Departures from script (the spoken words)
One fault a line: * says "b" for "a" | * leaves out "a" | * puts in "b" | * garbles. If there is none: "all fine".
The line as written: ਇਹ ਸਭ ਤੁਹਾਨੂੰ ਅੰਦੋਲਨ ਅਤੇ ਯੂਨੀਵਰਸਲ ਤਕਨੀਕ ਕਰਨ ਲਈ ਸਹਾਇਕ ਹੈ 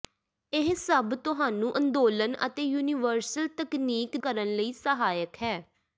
all fine